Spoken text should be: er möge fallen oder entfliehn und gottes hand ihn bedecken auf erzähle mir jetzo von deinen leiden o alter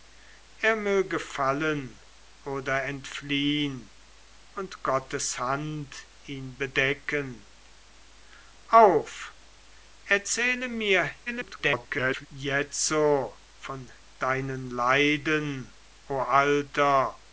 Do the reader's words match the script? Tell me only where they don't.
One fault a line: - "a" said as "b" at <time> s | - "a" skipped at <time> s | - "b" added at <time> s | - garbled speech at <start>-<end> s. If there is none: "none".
- garbled speech at 11.3-12.3 s